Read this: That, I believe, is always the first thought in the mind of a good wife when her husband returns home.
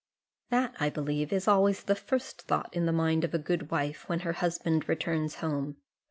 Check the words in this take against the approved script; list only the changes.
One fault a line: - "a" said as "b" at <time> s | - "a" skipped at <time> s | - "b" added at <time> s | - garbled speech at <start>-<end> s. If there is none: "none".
none